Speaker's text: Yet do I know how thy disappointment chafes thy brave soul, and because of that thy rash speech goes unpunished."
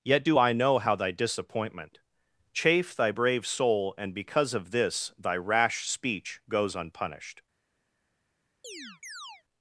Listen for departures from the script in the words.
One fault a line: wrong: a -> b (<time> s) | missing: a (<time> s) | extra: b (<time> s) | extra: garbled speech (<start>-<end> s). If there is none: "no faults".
wrong: chafes -> chafe (2.5 s)
wrong: that -> this (4.7 s)